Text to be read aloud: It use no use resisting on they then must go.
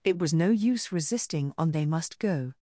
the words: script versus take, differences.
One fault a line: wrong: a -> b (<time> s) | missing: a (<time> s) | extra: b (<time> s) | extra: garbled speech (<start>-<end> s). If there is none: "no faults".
wrong: use -> was (0.2 s)
missing: then (1.8 s)